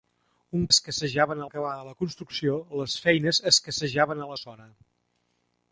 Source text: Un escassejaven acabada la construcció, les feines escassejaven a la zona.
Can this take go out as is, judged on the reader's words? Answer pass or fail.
pass